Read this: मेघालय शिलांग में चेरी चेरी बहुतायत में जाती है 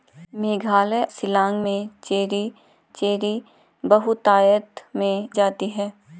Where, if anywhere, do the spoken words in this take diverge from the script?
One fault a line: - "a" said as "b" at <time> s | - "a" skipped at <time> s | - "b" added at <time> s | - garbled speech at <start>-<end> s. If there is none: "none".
none